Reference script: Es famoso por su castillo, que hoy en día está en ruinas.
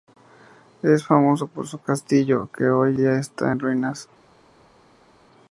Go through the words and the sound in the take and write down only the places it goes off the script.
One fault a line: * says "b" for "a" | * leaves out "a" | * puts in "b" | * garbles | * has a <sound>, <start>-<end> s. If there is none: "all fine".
* leaves out "en"